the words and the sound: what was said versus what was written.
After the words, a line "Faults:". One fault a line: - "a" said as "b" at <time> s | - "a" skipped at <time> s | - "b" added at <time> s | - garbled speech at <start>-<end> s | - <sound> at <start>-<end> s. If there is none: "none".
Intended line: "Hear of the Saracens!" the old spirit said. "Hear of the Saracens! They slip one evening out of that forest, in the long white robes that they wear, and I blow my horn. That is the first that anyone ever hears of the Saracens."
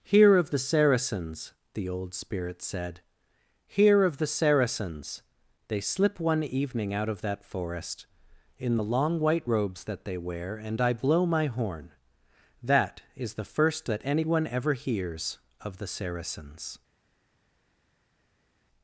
"Hear of the Saracens!" the old spirit said. "Hear of the Saracens! They slip one evening out of that forest, in the long white robes that they wear, and I blow my horn. That is the first that anyone ever hears of the Saracens."
Faults:
none